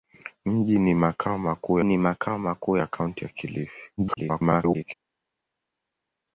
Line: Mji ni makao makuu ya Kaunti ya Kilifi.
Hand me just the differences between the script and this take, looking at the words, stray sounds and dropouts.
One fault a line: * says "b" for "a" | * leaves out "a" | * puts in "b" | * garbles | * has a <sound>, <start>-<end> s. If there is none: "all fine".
* puts in "ni makao makuu"
* garbles